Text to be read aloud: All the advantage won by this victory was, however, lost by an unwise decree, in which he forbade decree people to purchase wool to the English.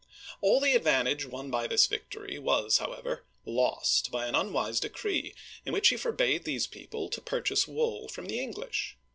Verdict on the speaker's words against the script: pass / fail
fail